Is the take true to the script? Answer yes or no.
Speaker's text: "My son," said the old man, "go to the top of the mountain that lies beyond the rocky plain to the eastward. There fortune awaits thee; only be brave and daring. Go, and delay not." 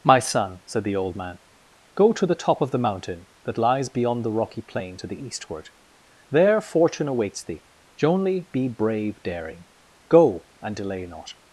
no